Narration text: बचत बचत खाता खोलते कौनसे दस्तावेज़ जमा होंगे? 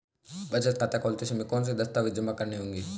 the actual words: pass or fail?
fail